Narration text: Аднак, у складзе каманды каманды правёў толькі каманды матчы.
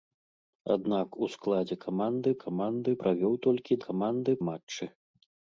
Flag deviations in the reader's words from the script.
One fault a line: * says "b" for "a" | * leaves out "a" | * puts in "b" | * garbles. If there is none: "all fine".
all fine